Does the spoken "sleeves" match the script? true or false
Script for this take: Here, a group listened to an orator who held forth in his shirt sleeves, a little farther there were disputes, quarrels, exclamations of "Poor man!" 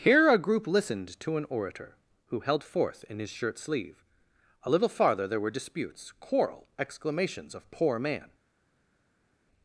false